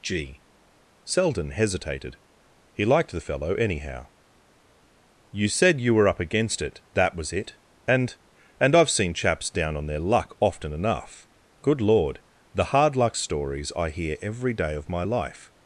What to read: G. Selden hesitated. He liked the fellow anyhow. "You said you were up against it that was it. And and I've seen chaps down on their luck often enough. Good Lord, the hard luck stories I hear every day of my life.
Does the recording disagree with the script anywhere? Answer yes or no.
no